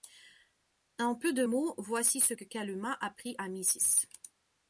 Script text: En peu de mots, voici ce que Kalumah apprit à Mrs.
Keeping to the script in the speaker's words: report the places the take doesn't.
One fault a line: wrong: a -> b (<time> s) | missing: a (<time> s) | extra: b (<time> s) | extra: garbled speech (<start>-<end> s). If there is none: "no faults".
no faults